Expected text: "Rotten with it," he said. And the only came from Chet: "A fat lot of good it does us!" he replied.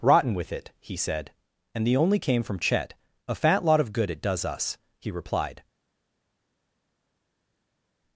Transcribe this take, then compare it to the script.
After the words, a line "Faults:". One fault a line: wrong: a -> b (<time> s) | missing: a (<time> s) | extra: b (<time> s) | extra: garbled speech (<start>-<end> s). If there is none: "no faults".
"Rotten with it," he said. And the only came from Chet: "A fat lot of good it does us!" he replied.
Faults:
no faults